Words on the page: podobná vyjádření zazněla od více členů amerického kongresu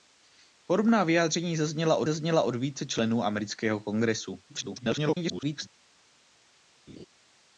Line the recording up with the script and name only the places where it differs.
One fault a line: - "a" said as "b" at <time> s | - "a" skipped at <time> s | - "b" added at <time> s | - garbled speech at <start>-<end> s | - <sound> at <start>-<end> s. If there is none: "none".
- "zazněla od" added at 2.0 s
- garbled speech at 4.5-5.7 s
- laugh at 6.9-7.1 s